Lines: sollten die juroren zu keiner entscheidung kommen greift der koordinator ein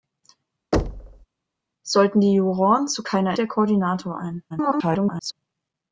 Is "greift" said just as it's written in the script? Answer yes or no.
no